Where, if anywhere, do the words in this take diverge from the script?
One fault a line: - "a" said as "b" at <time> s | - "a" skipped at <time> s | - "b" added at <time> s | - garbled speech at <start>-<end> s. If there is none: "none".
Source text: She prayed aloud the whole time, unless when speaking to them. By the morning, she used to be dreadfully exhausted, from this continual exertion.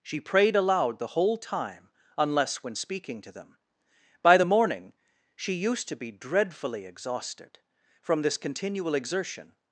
none